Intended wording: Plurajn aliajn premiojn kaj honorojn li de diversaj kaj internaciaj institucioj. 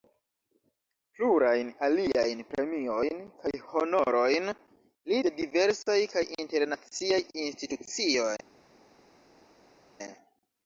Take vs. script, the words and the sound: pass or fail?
pass